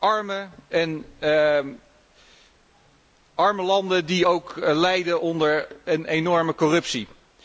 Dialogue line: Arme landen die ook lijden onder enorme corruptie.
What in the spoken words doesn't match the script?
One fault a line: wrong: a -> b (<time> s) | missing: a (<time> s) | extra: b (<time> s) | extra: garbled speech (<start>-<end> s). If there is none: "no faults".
extra: een (5.8 s)